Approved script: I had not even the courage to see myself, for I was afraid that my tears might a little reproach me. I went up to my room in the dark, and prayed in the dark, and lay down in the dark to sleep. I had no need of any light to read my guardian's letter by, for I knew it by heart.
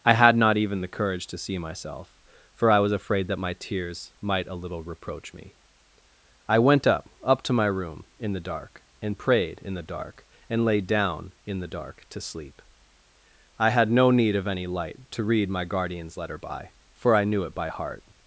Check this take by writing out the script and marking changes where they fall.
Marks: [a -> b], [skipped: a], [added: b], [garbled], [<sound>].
I had not even the courage to see myself, for I was afraid that my tears might a little reproach me. I went up [added: up] to my room in the dark, and prayed in the dark, and lay down in the dark to sleep. I had no need of any light to read my guardian's letter by, for I knew it by heart.